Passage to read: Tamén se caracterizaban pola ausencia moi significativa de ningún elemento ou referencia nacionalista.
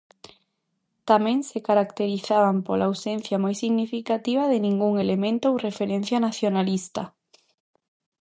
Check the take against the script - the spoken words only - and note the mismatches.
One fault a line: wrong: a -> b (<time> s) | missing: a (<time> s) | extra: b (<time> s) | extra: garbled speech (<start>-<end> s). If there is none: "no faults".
no faults